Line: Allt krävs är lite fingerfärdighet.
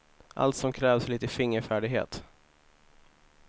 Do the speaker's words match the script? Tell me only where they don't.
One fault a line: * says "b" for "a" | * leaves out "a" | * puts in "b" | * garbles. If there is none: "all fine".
* puts in "som"